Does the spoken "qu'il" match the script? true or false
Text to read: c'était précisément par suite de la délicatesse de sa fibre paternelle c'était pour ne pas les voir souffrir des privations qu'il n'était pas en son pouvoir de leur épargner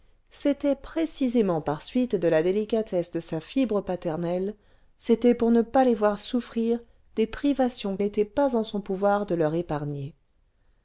false